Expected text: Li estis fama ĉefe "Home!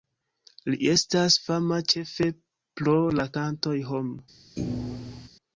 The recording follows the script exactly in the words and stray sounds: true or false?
false